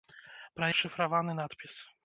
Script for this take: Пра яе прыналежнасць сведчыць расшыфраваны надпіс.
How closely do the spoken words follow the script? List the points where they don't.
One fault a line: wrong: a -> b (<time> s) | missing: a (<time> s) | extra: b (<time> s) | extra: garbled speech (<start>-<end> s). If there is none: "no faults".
missing: яе прыналежнасць сведчыць (0.7 s)